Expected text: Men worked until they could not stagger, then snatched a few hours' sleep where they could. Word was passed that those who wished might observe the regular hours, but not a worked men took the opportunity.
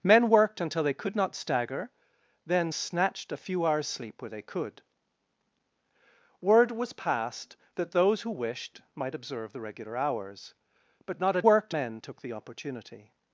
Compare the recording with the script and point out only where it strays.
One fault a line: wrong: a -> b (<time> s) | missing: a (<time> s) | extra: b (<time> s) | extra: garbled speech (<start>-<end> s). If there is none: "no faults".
no faults